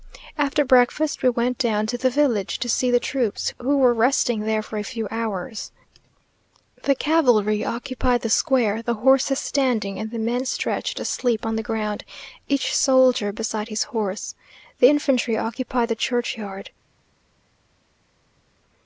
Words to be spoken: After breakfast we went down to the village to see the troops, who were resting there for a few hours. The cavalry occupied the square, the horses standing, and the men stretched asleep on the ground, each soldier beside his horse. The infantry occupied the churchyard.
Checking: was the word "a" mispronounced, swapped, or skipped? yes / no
no